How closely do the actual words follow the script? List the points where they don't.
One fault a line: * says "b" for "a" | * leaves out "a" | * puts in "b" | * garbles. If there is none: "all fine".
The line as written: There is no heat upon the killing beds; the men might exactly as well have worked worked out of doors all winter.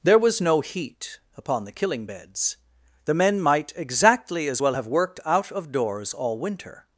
* says "was" for "is"
* leaves out "worked"